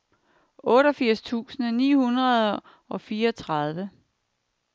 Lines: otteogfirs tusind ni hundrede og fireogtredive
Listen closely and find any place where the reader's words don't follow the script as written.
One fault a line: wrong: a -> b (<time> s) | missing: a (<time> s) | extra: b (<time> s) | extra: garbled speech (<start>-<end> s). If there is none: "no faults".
no faults